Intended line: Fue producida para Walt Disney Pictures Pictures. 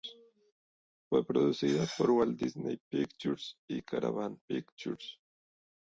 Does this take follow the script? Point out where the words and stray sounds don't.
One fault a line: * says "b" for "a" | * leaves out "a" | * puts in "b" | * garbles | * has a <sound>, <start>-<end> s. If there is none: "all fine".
* says "por" for "para"
* puts in "y Caravan"